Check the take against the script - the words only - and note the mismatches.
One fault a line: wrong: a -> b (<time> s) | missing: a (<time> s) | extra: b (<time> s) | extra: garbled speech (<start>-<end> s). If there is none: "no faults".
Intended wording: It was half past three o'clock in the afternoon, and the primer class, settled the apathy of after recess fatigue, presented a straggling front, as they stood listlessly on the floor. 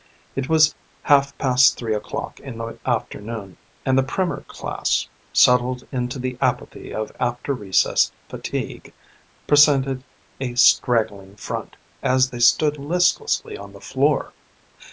extra: into (5.9 s)